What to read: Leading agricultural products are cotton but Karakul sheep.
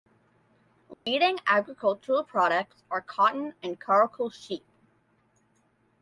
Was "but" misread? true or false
true